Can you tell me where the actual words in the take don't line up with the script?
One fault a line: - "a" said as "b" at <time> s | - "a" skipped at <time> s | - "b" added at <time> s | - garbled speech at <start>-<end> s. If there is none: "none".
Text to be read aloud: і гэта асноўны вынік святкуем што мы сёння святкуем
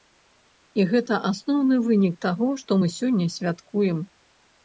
- "святкуем" said as "таго" at 2.3 s